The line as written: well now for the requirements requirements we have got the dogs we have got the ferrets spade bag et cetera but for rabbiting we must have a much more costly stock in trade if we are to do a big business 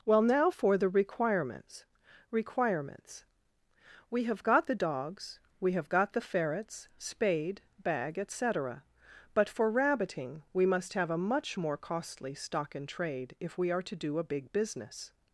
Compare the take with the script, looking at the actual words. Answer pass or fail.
pass